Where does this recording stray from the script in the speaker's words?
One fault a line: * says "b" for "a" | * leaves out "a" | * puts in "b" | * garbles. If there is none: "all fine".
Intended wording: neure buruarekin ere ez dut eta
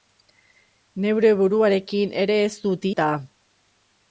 all fine